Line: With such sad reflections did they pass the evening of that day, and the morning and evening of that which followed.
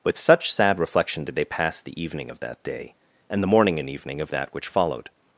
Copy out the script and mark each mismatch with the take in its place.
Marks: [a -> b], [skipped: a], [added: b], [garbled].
With such sad [reflections -> reflection] did they pass the evening of that day, and the morning and evening of that which followed.